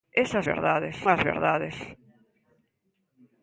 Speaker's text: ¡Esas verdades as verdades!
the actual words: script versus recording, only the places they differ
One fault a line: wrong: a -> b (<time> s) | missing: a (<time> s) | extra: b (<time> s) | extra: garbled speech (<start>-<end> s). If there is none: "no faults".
no faults